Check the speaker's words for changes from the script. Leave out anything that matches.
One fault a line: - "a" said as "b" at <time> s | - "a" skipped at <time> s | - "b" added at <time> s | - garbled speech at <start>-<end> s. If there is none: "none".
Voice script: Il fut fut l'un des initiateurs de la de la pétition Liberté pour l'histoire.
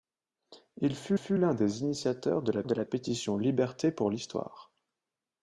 none